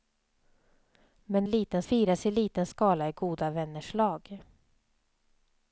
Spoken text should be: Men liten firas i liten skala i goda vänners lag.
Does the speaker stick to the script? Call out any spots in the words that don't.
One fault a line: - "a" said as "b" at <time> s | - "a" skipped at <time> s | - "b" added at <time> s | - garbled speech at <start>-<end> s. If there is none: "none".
none